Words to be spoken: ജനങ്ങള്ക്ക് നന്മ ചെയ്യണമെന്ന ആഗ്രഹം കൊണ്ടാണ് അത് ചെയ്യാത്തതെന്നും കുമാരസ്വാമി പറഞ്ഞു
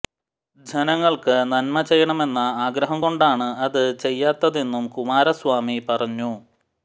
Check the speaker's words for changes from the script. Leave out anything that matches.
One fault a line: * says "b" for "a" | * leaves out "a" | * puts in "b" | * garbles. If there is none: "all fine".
all fine